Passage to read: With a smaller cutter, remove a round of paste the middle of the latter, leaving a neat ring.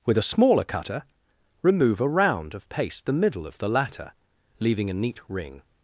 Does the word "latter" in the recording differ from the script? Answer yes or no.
no